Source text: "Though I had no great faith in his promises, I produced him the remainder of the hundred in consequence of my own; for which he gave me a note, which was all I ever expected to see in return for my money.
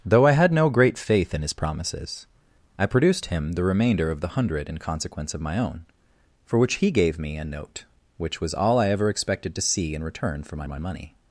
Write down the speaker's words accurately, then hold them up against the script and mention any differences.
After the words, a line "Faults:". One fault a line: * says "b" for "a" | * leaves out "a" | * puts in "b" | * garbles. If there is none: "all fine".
"Though I had no great faith in his promises, I produced him the remainder of the hundred in consequence of my own; for which he gave me a note, which was all I ever expected to see in return for my my money.
Faults:
* puts in "my"